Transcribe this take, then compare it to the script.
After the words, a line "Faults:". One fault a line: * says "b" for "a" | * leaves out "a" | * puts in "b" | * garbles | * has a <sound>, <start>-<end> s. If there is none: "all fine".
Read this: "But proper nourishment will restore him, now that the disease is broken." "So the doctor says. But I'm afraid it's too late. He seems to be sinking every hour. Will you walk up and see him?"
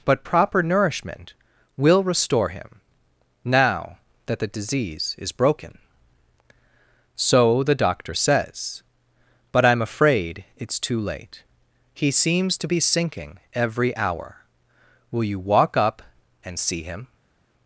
"But proper nourishment will restore him, now that the disease is broken." "So the doctor says. But I'm afraid it's too late. He seems to be sinking every hour. Will you walk up and see him?"
Faults:
all fine